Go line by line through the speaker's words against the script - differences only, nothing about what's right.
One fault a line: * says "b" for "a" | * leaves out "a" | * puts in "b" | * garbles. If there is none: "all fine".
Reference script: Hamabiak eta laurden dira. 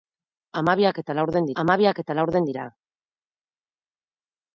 * puts in "hamabiak eta laurden"